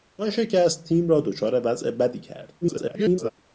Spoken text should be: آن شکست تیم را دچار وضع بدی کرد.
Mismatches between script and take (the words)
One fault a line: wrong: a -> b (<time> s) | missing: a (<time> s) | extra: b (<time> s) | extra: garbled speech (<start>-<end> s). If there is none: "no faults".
extra: garbled speech (2.6-3.3 s)